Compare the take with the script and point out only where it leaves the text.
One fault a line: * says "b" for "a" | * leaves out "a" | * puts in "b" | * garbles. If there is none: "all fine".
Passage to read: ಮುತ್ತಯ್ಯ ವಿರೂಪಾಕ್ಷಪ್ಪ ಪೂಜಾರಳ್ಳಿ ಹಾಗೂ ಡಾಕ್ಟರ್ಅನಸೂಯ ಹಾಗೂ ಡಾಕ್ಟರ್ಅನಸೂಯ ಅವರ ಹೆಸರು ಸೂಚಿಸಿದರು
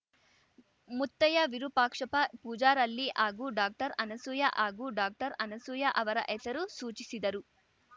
all fine